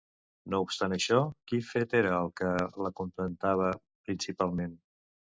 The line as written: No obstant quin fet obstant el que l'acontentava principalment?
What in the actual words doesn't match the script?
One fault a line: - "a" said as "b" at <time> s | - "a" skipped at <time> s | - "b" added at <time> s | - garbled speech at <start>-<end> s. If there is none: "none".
- "això" added at 0.9 s
- "obstant" said as "era" at 2.0 s